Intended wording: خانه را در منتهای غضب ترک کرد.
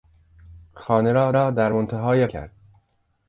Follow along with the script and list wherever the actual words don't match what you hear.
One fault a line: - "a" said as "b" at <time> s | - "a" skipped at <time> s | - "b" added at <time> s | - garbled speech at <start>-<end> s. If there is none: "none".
- "را" added at 1.3 s
- "غضب ترک" skipped at 2.3 s